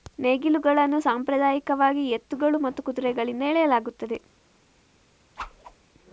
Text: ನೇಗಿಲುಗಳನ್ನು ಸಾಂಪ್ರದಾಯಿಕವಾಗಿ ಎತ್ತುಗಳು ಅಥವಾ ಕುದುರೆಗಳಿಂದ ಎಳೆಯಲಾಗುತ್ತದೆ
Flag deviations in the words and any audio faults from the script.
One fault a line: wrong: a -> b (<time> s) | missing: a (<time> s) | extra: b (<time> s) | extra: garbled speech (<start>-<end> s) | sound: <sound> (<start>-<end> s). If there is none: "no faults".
wrong: ಅಥವಾ -> ಮತ್ತು (2.6 s)
sound: whoosh (5.4-5.8 s)